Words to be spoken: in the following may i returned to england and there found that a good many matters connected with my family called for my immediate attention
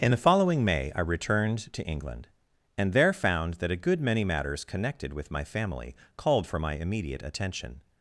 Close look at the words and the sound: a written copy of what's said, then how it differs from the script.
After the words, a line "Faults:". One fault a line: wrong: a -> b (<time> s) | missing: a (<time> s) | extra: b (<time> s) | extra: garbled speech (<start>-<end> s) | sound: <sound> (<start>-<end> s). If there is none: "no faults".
in the following may i returned to england and there found that a good many matters connected with my family called for my immediate attention
Faults:
no faults